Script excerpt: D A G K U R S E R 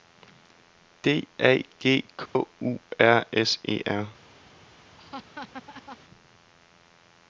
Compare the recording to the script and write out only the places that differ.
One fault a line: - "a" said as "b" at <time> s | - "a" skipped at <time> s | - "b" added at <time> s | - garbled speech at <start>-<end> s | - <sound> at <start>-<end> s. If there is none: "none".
- dropout at 2.3-2.4 s
- laugh at 5.0-6.0 s